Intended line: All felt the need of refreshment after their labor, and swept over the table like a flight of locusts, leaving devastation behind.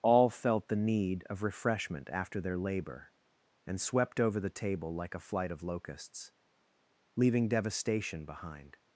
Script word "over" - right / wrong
right